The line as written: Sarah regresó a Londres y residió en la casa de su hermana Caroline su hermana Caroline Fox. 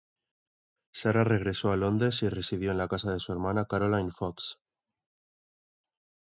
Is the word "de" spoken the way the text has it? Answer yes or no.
yes